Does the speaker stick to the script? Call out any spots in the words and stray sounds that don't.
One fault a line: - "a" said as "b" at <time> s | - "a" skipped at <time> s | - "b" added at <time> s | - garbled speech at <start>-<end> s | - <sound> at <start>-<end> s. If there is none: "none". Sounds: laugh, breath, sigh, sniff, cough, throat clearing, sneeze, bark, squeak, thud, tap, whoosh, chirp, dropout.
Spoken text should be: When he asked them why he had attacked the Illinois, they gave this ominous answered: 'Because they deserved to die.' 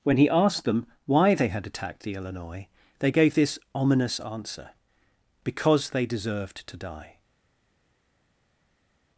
- "he" said as "they" at 1.4 s
- "answered" said as "answer" at 4.2 s